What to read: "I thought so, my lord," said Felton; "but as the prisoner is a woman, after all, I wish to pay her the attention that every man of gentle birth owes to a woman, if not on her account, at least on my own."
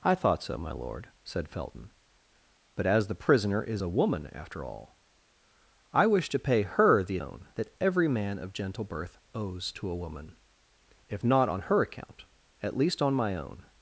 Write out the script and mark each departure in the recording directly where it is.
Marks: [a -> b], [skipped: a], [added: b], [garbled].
"I thought so, my lord," said Felton; "but as the prisoner is a woman, after all, I wish to pay her the [attention -> own] that every man of gentle birth owes to a woman, if not on her account, at least on my own."